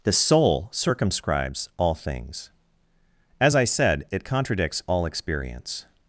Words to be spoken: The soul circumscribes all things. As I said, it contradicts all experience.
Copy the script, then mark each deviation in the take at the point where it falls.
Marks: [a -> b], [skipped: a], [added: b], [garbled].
The soul circumscribes all things. As I said, it contradicts all experience.